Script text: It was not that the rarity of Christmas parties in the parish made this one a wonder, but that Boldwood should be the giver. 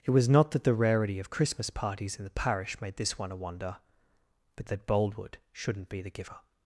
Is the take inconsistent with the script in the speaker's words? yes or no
yes